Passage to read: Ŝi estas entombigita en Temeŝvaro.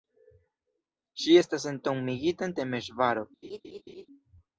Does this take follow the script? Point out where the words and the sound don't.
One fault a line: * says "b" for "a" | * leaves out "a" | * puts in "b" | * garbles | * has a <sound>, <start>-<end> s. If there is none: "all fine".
* has a laugh, 3.4-4.1 s